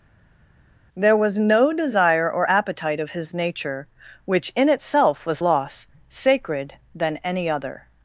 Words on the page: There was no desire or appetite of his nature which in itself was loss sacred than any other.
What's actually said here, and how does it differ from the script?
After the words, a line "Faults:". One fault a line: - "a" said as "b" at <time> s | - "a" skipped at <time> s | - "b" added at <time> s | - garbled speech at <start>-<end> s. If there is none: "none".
There was no desire or appetite of his nature which in itself was loss sacred than any other.
Faults:
none